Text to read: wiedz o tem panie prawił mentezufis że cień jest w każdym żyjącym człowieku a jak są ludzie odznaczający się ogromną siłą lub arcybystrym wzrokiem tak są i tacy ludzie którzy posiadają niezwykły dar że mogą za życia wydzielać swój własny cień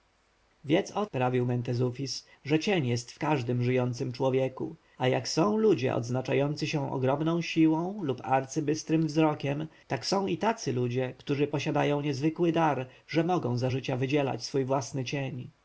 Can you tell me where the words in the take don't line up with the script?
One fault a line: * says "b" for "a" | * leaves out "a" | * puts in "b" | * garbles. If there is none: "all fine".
* leaves out "tem panie"